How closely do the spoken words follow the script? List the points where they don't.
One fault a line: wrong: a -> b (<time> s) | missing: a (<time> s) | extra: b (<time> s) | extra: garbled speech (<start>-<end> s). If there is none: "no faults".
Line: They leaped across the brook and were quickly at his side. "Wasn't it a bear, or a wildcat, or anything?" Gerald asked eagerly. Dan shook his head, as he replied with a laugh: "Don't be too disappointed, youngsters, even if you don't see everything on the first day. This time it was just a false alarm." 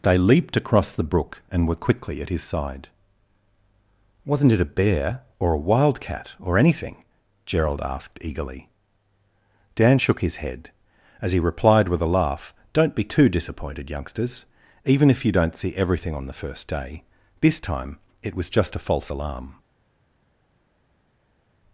no faults